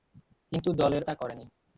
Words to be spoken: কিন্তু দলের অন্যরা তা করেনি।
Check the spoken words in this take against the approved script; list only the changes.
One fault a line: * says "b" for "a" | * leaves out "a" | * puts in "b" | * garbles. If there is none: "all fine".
* leaves out "অন্যরা"